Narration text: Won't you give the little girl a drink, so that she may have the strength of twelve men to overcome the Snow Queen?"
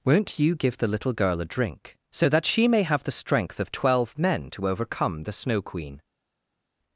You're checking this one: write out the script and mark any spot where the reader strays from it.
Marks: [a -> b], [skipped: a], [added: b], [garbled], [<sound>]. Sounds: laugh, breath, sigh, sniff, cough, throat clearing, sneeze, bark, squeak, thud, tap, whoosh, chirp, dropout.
Won't you give the little girl a drink, so that she may have the strength of twelve men to overcome the Snow Queen?"